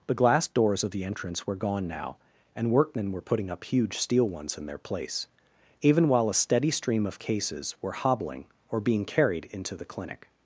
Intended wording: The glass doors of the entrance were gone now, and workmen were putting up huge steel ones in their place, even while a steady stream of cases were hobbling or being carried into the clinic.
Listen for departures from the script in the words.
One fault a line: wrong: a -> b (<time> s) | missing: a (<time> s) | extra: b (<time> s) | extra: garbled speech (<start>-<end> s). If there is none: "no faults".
no faults